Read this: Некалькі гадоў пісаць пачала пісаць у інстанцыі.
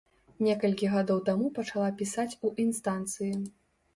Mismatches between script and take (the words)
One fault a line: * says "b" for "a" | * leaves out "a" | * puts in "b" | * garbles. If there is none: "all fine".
* says "таму" for "пісаць"